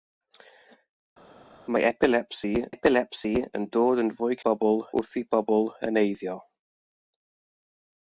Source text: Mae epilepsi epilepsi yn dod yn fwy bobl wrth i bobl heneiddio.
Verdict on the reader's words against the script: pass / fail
pass